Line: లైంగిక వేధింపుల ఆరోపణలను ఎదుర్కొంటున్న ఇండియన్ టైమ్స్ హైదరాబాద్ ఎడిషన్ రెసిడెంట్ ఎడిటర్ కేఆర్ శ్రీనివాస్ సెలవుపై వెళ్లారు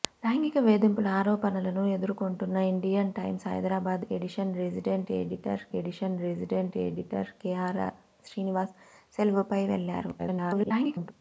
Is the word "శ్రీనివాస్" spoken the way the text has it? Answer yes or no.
yes